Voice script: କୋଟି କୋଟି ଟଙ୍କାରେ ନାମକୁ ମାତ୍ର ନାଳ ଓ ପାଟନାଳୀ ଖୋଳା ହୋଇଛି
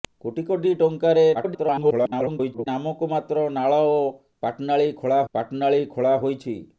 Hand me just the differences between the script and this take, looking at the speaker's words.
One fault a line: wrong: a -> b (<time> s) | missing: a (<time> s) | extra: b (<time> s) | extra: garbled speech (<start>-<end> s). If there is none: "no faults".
extra: garbled speech (1.3-2.7 s)
extra: ପାଟନାଳୀ ଖୋଳା (5.3 s)